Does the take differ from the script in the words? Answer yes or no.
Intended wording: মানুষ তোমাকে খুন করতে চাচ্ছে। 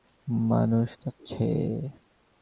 yes